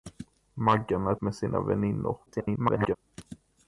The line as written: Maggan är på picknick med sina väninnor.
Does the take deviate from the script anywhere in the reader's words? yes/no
yes